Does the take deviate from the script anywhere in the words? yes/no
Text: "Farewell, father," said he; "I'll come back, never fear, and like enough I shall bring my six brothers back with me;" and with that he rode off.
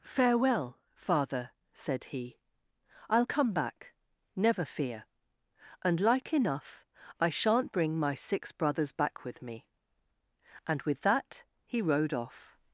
yes